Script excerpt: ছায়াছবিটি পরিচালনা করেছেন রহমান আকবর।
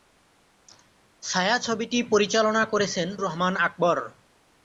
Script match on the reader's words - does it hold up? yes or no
yes